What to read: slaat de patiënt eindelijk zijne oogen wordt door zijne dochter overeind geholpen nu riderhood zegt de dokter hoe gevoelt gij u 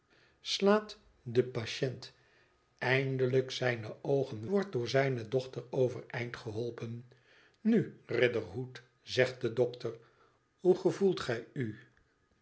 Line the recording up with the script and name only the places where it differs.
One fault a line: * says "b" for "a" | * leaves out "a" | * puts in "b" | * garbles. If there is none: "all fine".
all fine